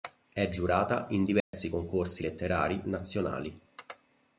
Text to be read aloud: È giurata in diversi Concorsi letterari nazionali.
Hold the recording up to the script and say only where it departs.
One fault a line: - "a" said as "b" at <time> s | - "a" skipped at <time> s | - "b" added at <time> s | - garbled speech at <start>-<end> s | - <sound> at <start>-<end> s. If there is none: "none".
- dropout at 1.4-1.5 s